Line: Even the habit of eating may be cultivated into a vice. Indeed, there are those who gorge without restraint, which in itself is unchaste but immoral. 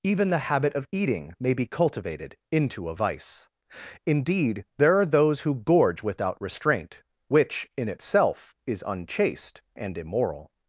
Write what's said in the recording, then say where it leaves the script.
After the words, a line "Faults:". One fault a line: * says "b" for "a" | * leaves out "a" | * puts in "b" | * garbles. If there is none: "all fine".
Even the habit of eating may be cultivated into a vice. Indeed, there are those who gorge without restraint, which in itself is unchaste and immoral.
Faults:
* says "and" for "but"